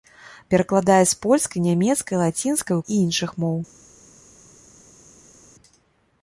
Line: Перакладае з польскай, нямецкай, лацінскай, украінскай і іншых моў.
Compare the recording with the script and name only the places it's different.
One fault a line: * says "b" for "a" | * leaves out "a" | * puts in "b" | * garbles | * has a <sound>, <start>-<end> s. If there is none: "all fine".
* leaves out "украінскай"